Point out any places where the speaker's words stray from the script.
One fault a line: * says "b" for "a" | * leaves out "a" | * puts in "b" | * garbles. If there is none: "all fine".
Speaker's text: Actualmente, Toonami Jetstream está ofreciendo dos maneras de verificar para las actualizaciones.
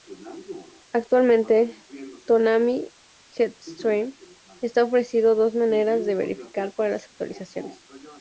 all fine